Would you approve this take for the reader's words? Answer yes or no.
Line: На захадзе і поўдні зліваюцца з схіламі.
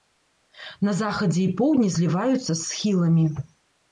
yes